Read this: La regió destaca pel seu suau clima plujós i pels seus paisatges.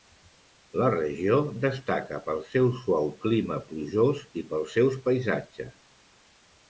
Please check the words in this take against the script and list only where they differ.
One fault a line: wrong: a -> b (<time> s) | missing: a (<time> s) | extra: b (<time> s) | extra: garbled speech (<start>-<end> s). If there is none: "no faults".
no faults